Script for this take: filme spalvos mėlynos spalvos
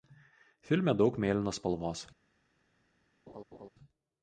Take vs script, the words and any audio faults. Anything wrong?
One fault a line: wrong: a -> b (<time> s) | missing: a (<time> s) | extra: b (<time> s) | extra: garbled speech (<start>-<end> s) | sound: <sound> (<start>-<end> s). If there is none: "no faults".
wrong: spalvos -> daug (1.0 s)
sound: laugh (3.3-3.7 s)